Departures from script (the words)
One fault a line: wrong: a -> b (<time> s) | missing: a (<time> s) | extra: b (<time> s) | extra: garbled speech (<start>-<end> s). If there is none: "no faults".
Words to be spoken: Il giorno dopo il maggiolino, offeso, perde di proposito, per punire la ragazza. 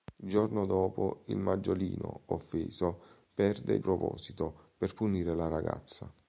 missing: di (3.8 s)